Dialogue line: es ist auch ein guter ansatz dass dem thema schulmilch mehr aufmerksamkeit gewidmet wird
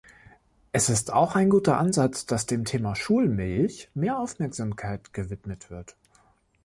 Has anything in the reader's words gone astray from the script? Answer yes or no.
no